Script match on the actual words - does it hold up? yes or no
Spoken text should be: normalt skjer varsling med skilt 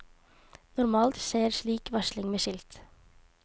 no